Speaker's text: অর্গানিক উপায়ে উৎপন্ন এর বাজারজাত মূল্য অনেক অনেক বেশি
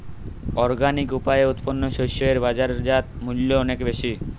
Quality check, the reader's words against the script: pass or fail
fail